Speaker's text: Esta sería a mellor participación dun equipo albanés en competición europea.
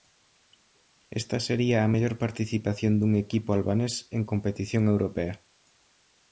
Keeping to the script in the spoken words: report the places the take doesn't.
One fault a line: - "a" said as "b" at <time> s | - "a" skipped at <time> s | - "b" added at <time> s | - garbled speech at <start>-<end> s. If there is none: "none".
none